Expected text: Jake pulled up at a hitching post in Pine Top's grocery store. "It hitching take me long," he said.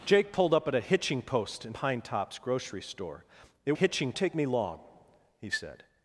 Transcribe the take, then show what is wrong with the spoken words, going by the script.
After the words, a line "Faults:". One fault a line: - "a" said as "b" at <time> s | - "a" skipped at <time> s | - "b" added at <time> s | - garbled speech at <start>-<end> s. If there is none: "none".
Jake pulled up at a hitching post in Pine Top's grocery store. "It hitching take me long," he said.
Faults:
none